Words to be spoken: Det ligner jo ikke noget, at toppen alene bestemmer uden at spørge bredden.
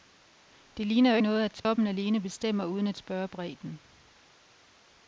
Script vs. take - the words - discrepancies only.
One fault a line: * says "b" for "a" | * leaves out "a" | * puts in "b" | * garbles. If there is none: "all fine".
* leaves out "ikke"